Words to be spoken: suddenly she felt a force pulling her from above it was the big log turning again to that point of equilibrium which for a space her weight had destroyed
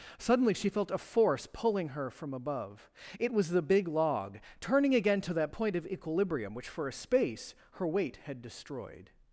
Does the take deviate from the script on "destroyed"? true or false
false